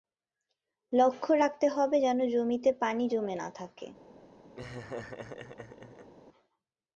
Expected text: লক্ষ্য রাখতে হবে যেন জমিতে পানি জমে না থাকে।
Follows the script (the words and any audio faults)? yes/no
no